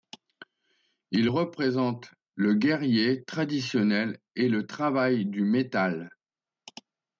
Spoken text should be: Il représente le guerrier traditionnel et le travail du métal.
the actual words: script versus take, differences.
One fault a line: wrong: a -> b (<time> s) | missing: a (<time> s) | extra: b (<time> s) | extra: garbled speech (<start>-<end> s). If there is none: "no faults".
no faults